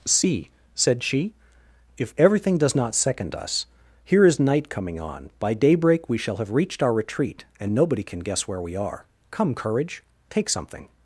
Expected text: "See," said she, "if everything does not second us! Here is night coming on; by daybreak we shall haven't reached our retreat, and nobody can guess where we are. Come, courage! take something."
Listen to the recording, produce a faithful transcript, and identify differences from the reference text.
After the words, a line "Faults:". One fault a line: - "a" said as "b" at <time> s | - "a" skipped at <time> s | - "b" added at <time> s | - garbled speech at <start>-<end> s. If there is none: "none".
"See," said she, "if everything does not second us! Here is night coming on; by daybreak we shall have reached our retreat, and nobody can guess where we are. Come, courage! take something."
Faults:
- "haven't" said as "have" at 6.4 s